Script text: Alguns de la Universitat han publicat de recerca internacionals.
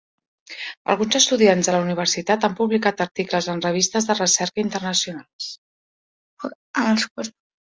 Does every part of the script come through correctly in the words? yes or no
no